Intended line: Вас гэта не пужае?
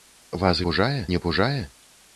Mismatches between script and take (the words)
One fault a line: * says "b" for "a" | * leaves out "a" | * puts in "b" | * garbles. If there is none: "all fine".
* says "пужае" for "гэта"